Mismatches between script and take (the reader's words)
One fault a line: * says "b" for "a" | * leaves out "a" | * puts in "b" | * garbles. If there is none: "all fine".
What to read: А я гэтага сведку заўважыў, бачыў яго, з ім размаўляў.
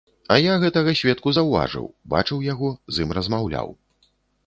all fine